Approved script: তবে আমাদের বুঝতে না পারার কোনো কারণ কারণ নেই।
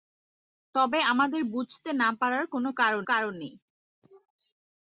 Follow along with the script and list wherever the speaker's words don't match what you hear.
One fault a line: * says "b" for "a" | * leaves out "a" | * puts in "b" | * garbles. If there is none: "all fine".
all fine